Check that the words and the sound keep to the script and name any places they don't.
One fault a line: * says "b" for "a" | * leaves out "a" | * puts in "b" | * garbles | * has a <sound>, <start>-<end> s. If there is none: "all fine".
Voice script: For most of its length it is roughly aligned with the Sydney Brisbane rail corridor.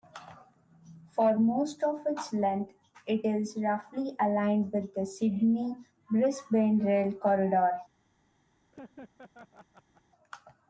* has a laugh, 8.7-10.0 s